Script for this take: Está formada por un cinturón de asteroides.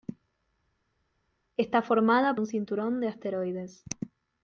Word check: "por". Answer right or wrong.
wrong